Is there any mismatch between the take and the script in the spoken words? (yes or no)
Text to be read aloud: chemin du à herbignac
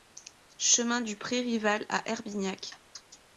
yes